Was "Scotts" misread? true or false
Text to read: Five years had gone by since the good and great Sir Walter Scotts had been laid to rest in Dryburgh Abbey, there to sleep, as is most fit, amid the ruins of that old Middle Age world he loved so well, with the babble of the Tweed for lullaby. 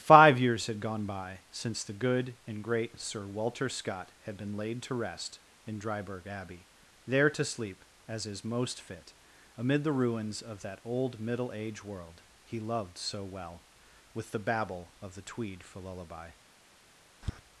true